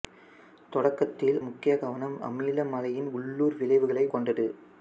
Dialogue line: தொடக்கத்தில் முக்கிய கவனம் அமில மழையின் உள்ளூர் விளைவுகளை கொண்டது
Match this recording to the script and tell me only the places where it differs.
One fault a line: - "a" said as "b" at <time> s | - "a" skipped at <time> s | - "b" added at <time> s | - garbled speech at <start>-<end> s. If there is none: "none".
none